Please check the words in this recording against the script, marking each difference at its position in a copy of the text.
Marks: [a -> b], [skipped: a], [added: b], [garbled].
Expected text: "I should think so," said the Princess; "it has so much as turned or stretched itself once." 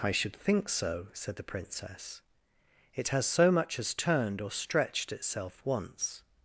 "I should think so," said the Princess; "it has so much as turned or stretched itself once."